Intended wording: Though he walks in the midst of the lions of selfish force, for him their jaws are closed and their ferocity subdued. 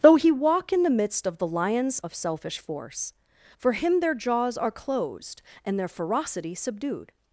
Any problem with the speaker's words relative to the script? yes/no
yes